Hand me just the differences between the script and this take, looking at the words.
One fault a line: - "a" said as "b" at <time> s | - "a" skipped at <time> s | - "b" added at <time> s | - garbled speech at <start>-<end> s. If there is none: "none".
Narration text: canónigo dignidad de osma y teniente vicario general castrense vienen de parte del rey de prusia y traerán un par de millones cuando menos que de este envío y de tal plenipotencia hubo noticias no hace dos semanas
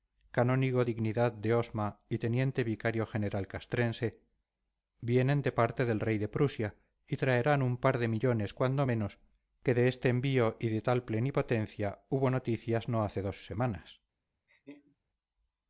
none